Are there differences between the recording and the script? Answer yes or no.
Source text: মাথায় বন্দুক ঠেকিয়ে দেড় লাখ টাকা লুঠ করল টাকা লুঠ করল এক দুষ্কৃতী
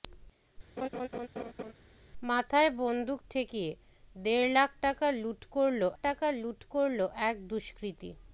no